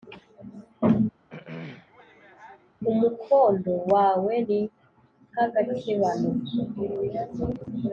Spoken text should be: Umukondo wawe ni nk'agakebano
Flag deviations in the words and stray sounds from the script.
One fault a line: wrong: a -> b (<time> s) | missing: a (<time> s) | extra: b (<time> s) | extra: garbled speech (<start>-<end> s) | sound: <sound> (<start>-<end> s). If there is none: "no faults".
sound: throat clearing (1.3-2.7 s)